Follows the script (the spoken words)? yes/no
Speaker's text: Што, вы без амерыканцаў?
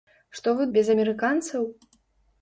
yes